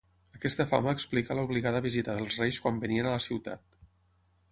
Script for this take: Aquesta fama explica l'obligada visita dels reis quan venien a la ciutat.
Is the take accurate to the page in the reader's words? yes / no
yes